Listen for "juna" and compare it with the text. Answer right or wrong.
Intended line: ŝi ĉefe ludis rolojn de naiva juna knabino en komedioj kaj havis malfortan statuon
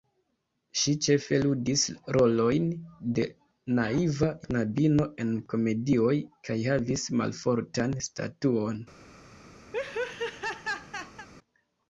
wrong